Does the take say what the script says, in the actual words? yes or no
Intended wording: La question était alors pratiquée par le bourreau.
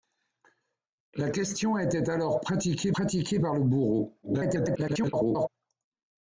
no